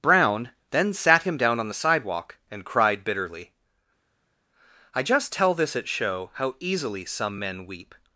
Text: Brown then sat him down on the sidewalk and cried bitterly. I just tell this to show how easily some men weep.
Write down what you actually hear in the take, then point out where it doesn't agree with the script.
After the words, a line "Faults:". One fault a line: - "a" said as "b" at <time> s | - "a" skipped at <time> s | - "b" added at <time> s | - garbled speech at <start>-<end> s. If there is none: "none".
Brown then sat him down on the sidewalk and cried bitterly. I just tell this at show how easily some men weep.
Faults:
- "to" said as "at" at 5.8 s